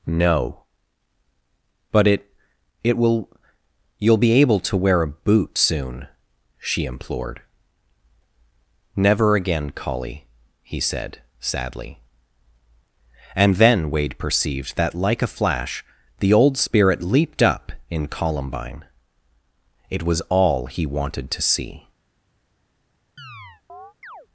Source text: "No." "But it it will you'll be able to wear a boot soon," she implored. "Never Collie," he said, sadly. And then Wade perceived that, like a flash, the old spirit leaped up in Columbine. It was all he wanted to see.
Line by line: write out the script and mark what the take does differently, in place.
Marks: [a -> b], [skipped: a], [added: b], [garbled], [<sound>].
"No." "But it it will you'll be able to wear a boot soon," she implored. "Never [added: again] Collie," he said, sadly. And then Wade perceived that, like a flash, the old spirit leaped up in Columbine. It was all he wanted to see. [chirp]